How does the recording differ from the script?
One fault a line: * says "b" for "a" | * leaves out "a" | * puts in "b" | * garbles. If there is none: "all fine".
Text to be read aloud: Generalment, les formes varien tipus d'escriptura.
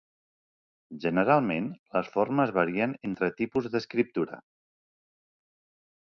* puts in "entre"